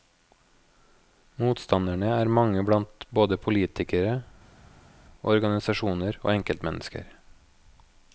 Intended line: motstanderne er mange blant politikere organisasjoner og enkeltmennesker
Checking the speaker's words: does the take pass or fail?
fail